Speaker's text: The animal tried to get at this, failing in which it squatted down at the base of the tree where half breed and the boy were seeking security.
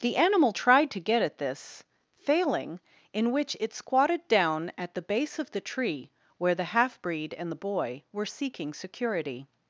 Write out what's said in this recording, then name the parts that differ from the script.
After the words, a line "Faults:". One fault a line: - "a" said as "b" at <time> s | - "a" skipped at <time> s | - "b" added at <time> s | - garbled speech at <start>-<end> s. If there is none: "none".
The animal tried to get at this, failing in which it squatted down at the base of the tree where the half breed and the boy were seeking security.
Faults:
- "the" added at 6.5 s